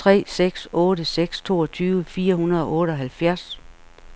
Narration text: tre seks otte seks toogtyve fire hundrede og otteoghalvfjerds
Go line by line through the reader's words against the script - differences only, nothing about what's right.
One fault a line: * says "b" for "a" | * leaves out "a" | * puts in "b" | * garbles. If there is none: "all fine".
all fine